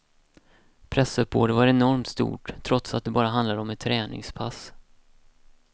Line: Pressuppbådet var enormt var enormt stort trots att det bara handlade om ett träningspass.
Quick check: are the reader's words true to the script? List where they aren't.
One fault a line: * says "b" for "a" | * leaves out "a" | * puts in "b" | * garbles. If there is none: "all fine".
* leaves out "var enormt"